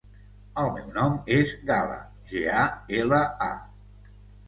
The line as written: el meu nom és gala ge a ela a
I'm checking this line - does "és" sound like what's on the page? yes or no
yes